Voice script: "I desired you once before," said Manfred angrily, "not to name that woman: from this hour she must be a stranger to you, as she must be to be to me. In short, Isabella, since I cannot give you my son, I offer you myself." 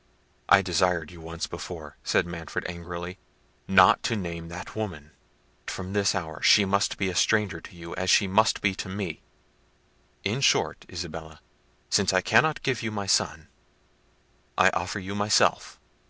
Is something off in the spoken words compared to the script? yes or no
yes